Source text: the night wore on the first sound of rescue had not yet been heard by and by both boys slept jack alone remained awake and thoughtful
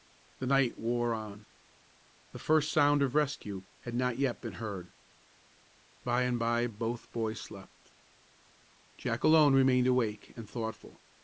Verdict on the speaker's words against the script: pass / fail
pass